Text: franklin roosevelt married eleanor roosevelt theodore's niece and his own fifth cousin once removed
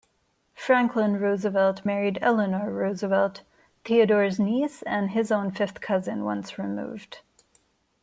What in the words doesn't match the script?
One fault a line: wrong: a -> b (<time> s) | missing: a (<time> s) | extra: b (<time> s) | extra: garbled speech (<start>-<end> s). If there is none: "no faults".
no faults